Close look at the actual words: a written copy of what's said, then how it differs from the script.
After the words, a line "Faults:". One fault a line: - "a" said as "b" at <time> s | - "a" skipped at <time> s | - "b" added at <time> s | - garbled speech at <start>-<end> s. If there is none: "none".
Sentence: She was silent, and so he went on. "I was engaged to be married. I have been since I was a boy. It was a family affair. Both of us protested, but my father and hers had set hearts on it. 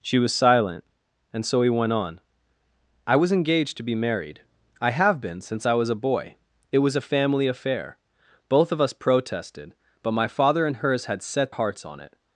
She was silent, and so he went on. "I was engaged to be married. I have been since I was a boy. It was a family affair. Both of us protested, but my father and hers had set hearts on it.
Faults:
none